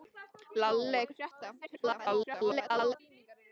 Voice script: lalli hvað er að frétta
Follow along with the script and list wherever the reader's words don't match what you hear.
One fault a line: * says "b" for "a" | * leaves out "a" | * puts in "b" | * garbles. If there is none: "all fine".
* leaves out "hvað"
* garbles